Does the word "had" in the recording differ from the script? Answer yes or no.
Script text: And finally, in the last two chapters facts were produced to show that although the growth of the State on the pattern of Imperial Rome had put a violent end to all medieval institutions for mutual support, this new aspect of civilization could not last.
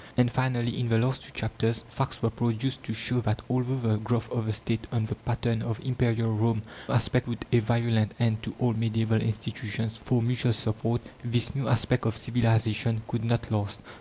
yes